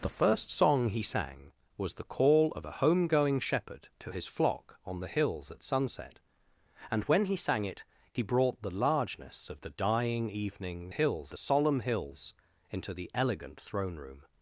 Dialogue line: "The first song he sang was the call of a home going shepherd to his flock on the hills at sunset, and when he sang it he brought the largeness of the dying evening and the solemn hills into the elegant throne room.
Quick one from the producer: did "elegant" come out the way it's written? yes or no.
yes